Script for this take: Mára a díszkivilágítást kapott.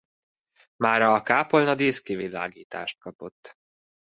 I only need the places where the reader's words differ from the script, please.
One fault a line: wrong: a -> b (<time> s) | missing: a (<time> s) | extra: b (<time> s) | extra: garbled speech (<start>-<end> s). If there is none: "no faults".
extra: kápolna (1.2 s)